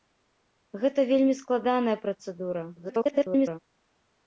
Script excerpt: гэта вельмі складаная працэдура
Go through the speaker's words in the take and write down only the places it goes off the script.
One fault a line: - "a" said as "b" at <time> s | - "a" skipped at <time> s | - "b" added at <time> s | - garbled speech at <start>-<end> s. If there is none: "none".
- garbled speech at 2.8-3.6 s